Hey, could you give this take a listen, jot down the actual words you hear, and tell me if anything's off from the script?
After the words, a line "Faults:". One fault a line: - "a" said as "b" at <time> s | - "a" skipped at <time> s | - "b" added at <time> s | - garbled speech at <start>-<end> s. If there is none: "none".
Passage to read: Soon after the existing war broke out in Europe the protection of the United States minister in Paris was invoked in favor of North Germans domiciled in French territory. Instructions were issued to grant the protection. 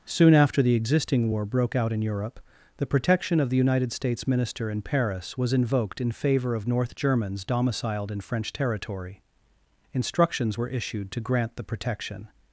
Soon after the existing war broke out in Europe the protection of the United States minister in Paris was invoked in favor of North Germans domiciled in French territory. Instructions were issued to grant the protection.
Faults:
none